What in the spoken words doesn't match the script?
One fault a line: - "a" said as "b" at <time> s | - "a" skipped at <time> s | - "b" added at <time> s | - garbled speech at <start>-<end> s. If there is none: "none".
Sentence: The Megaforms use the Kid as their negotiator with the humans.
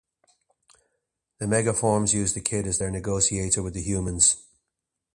none